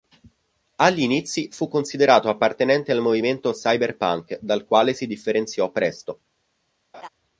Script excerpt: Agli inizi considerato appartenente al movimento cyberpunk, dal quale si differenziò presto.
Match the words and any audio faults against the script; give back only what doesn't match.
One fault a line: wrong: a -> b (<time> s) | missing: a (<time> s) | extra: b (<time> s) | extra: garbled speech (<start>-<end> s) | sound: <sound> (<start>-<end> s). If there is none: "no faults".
extra: fu (1.5 s)
sound: laugh (6.9-7.1 s)